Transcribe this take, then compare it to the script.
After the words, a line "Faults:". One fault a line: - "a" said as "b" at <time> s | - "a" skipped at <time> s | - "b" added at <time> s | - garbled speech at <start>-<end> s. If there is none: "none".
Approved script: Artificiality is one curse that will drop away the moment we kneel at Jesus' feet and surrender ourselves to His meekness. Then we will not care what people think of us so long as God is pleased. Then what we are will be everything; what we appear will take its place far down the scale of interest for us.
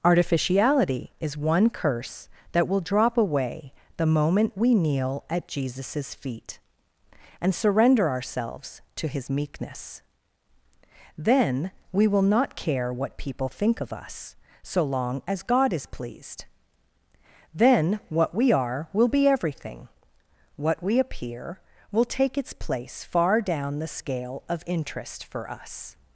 Artificiality is one curse that will drop away the moment we kneel at Jesus' feet and surrender ourselves to His meekness. Then we will not care what people think of us so long as God is pleased. Then what we are will be everything; what we appear will take its place far down the scale of interest for us.
Faults:
none